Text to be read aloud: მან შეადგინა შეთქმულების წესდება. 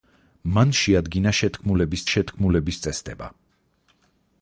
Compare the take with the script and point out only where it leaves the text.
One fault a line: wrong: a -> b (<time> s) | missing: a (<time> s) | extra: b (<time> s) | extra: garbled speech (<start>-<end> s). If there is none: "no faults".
extra: შეთქმულების (2.1 s)